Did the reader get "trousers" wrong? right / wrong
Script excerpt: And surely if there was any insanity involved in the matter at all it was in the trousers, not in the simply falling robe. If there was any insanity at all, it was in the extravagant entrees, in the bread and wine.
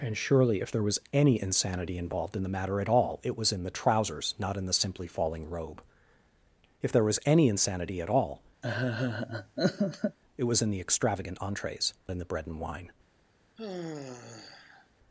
right